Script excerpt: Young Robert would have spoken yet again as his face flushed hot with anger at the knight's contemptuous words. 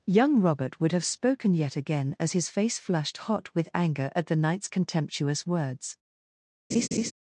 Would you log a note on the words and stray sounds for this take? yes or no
yes